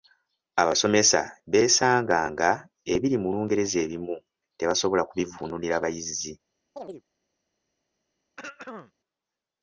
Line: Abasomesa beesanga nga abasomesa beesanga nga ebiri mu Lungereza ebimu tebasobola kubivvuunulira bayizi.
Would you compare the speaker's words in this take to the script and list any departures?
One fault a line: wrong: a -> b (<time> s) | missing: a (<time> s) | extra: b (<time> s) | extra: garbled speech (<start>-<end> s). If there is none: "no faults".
missing: abasomesa beesanga nga (2.5 s)